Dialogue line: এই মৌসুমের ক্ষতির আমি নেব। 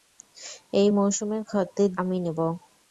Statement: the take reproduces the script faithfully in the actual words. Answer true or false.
true